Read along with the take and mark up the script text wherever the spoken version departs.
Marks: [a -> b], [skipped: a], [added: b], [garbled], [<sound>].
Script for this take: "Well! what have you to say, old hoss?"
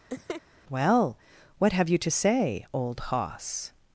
[laugh] "Well! what have you to say, old hoss?"